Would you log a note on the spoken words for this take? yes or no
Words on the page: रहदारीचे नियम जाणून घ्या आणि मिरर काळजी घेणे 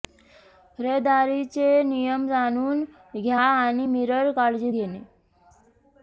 no